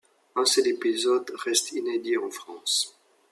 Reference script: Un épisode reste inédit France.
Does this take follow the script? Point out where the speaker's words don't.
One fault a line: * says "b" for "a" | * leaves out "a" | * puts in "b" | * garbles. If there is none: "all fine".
* puts in "seul"
* puts in "en"